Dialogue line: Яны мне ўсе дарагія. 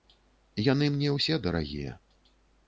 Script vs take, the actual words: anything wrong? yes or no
no